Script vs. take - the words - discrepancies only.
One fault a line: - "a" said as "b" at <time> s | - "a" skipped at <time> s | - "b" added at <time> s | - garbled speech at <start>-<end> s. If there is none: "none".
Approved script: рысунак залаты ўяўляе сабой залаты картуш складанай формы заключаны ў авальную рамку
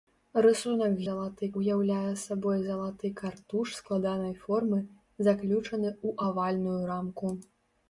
none